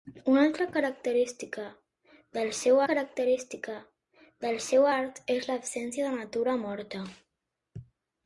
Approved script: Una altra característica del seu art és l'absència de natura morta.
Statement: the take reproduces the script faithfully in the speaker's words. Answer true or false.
false